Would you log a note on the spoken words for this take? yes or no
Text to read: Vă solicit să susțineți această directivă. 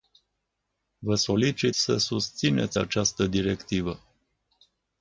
no